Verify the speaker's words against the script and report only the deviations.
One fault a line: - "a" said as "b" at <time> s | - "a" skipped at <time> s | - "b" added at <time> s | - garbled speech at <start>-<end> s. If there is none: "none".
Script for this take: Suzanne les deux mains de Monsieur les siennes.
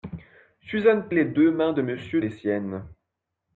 none